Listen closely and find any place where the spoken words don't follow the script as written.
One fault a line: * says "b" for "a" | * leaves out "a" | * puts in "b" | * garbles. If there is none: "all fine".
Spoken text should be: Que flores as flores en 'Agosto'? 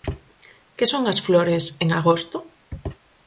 * says "son" for "flores"